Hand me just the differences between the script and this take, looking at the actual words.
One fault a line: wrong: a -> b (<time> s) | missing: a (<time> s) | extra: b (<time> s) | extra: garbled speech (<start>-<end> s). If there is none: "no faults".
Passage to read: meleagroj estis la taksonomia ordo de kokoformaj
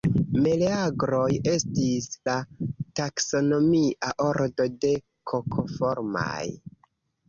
no faults